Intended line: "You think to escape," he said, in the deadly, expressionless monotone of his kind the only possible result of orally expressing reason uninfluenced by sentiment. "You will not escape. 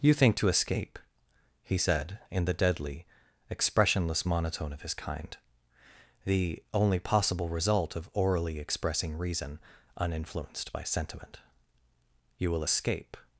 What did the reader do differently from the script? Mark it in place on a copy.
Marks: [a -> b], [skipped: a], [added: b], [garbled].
"You think to escape," he said, in the deadly, expressionless monotone of his kind the only possible result of orally expressing reason uninfluenced by sentiment. "You will [skipped: not] escape.